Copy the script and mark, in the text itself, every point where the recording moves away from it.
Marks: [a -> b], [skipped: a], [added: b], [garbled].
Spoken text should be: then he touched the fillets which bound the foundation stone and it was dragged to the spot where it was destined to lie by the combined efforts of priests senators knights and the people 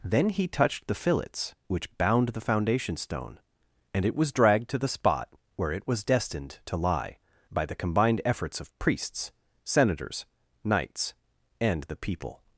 then he touched the fillets which bound the foundation stone and it was dragged to the spot where it was destined to lie by the combined efforts of priests senators knights and the people